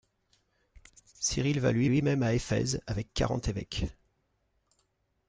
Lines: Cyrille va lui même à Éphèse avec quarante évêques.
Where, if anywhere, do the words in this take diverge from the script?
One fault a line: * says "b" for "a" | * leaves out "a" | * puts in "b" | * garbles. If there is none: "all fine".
* puts in "lui"